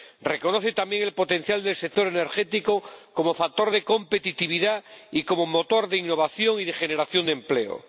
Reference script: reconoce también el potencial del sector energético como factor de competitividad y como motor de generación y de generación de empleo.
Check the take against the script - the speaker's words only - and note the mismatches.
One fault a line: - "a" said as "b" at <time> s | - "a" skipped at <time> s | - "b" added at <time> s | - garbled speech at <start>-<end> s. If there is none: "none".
- "generación" said as "innovación" at 6.0 s